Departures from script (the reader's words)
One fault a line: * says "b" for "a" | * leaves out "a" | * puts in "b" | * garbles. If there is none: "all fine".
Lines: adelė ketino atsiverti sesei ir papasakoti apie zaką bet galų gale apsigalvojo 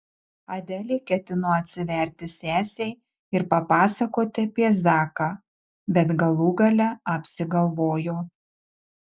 all fine